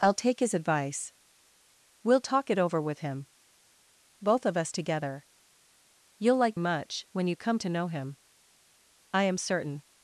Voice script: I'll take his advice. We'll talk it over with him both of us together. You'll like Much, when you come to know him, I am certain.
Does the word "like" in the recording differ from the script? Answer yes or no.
no